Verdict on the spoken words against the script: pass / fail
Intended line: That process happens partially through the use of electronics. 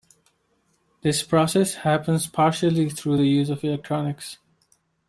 fail